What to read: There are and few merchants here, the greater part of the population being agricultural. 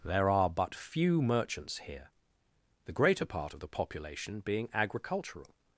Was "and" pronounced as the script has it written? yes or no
no